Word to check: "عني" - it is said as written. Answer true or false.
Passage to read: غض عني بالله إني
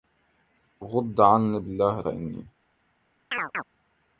true